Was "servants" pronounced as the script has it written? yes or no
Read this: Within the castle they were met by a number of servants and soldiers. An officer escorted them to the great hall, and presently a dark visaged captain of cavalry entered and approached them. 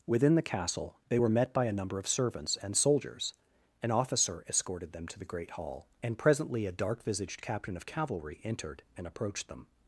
yes